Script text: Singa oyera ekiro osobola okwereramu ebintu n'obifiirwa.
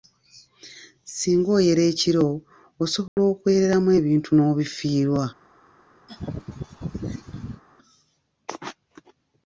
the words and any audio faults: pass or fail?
fail